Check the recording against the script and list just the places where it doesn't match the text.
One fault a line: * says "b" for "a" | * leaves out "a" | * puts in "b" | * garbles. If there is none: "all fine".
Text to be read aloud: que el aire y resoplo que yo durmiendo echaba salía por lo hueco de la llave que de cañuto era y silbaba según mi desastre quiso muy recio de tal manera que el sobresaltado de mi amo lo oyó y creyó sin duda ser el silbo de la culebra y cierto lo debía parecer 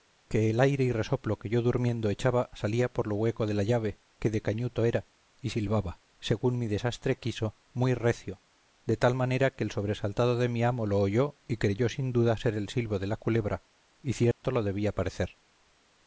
all fine